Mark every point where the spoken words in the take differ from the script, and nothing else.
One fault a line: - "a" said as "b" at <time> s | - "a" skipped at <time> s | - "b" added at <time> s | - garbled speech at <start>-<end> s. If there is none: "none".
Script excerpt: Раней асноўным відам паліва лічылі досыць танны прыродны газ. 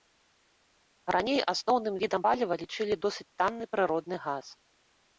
none